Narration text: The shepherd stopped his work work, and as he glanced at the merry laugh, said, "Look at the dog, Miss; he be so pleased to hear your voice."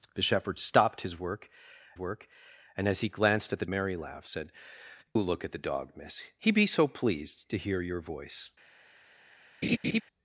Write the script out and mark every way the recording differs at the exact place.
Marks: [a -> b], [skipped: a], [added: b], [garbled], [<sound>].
The shepherd stopped his work work, and as he glanced at the merry laugh, said, "Look at the dog, Miss; he be so pleased to hear your voice." [laugh]